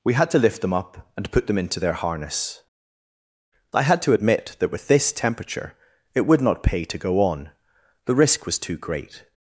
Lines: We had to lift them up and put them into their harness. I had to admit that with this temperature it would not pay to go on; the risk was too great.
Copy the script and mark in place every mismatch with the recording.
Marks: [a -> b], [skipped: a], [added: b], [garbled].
We had to lift them up and put them into their harness. I had to admit that with this temperature it would not pay to go on; the risk was too great.